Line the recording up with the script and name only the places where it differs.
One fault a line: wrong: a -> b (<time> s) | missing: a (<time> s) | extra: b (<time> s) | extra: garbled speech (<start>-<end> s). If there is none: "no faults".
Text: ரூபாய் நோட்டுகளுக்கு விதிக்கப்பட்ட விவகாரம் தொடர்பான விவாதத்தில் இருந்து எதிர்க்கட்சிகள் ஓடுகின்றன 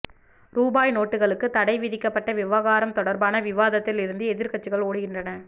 extra: தடை (1.5 s)